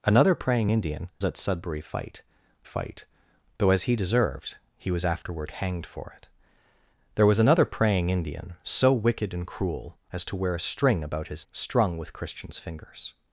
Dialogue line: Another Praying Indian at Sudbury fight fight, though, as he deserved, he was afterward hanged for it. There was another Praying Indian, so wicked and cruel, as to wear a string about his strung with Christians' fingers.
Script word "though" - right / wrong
right